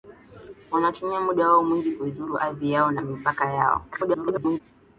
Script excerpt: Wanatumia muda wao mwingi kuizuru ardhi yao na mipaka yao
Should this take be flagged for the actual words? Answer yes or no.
yes